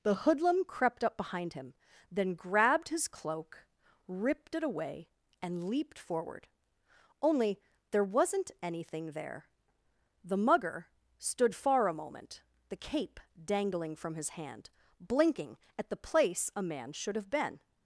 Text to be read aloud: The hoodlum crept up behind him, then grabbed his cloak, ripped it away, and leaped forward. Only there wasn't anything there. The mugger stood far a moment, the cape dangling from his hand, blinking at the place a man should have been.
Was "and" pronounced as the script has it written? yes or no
yes